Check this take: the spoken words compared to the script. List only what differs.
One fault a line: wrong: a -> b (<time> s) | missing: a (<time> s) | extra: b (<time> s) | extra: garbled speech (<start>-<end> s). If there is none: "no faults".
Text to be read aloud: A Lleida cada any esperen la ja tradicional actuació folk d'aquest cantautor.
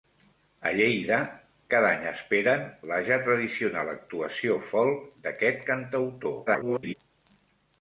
extra: garbled speech (6.5-6.9 s)